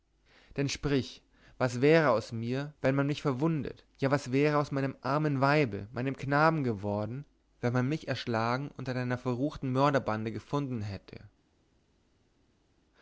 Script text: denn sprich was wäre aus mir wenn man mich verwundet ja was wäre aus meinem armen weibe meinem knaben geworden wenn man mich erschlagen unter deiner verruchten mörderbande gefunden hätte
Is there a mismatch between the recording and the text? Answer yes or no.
no